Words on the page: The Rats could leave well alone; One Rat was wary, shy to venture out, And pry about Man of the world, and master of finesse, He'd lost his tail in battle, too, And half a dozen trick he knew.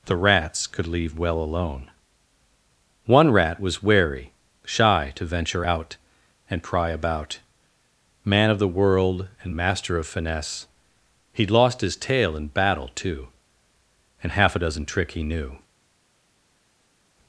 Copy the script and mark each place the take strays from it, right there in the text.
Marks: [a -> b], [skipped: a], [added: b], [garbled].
The Rats could leave well alone; One Rat was wary, shy to venture out, And pry about Man of the world, and master of finesse, He'd lost his tail in battle, too, And half a dozen trick he knew.